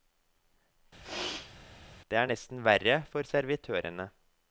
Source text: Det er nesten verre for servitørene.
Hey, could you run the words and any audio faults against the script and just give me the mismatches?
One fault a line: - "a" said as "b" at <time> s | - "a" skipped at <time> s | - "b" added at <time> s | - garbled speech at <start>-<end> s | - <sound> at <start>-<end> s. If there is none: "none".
- sneeze at 1.0-1.6 s